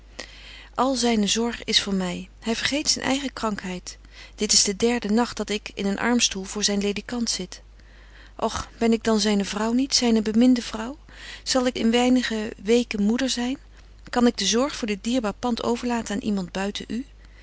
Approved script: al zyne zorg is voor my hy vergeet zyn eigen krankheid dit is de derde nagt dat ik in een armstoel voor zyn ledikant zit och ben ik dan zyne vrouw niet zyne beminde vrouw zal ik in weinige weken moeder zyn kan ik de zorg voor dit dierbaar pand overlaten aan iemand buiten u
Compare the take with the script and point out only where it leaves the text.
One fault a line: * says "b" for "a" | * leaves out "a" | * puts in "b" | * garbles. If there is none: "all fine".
all fine